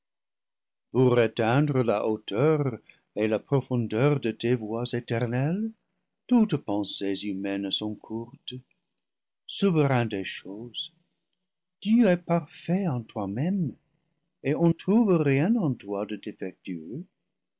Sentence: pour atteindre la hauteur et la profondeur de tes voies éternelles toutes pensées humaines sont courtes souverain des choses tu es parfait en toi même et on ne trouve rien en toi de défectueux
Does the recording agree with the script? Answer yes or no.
no